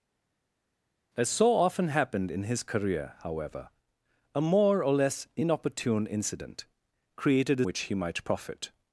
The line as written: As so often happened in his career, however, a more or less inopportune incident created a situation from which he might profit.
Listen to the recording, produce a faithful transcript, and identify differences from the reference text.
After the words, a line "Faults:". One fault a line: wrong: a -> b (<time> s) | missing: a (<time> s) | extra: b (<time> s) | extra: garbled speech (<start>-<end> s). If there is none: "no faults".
As so often happened in his career, however, a more or less inopportune incident created a which he might profit.
Faults:
missing: situation from (7.7 s)